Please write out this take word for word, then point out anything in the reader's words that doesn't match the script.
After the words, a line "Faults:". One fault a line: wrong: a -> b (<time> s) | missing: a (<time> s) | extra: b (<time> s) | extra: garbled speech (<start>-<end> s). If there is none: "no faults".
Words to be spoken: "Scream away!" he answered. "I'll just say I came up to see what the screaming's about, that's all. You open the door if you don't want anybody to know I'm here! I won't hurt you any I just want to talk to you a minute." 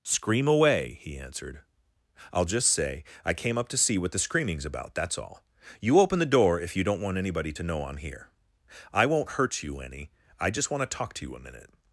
"Scream away!" he answered. "I'll just say I came up to see what the screaming's about, that's all. You open the door if you don't want anybody to know I'm here! I won't hurt you any I just want to talk to you a minute."
Faults:
no faults